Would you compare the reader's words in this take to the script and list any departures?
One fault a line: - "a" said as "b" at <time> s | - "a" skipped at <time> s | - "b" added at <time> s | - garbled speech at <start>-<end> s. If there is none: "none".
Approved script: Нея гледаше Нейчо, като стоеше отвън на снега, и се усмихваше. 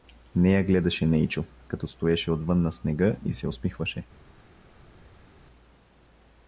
none